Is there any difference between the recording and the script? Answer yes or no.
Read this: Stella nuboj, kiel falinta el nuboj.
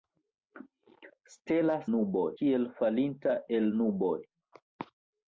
no